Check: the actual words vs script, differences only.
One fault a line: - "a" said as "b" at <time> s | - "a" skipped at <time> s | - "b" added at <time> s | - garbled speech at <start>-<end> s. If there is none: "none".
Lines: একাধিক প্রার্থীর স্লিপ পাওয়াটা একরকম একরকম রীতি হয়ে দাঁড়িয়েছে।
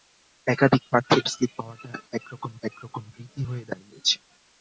none